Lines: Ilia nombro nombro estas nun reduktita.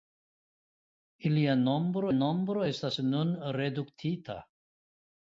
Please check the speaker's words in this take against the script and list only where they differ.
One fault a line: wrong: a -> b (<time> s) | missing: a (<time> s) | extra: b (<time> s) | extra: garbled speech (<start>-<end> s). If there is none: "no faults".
no faults